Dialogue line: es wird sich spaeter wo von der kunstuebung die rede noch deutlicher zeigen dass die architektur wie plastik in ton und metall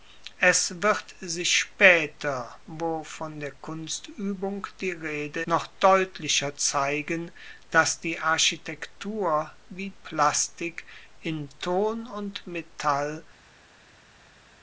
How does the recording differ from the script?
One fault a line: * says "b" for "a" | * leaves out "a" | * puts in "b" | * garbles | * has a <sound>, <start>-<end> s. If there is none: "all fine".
all fine